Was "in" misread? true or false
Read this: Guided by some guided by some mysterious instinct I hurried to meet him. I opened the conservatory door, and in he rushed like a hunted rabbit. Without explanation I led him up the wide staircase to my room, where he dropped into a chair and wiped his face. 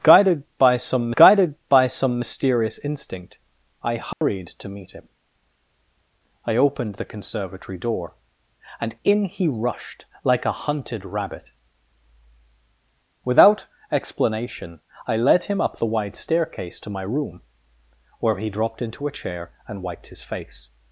false